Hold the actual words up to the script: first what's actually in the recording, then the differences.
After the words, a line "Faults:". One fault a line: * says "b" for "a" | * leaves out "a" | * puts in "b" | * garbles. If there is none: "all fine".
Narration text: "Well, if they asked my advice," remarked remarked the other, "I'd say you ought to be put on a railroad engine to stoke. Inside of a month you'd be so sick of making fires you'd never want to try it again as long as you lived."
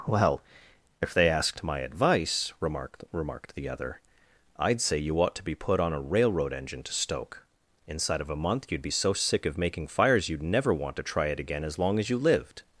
"Well, if they asked my advice," remarked remarked the other, "I'd say you ought to be put on a railroad engine to stoke. Inside of a month you'd be so sick of making fires you'd never want to try it again as long as you lived."
Faults:
all fine